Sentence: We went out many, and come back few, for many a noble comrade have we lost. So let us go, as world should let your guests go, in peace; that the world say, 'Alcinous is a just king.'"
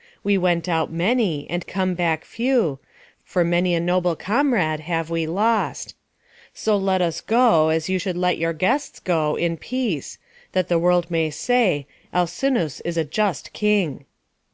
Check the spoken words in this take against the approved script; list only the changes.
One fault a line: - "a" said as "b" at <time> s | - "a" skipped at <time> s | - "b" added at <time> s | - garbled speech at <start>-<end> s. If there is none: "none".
- "world" said as "you" at 7.9 s
- "may" added at 11.1 s